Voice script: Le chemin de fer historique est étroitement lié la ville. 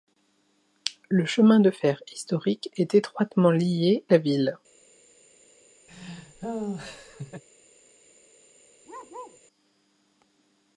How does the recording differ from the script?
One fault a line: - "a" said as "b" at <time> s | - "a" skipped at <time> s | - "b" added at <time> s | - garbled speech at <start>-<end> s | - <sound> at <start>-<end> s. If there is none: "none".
- laugh at 5.9-7.4 s
- bark at 8.9-9.4 s